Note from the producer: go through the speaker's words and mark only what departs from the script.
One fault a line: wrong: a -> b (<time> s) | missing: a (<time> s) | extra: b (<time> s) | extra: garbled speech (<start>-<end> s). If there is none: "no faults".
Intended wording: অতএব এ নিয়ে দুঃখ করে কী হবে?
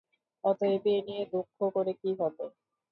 no faults